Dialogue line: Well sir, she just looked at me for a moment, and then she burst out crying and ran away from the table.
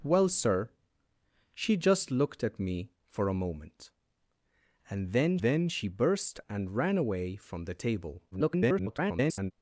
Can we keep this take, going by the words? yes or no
no